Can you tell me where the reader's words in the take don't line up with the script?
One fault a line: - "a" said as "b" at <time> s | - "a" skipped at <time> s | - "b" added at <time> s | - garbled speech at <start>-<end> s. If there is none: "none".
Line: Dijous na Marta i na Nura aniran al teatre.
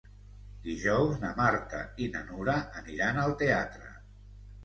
none